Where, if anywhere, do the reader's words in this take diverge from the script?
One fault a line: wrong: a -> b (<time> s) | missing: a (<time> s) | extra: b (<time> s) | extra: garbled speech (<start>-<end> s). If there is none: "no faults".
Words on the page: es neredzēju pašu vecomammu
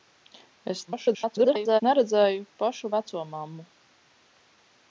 extra: garbled speech (0.9-1.8 s)